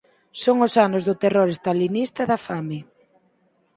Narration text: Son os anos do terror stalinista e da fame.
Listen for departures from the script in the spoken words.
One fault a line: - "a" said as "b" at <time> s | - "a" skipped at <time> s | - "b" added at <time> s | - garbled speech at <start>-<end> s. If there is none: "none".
none